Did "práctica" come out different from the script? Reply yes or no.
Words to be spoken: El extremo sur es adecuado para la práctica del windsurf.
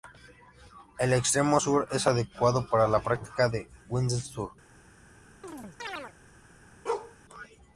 no